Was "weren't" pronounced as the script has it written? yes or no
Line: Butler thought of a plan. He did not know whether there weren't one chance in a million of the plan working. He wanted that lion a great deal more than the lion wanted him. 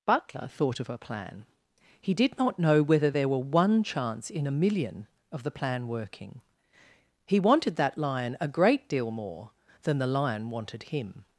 no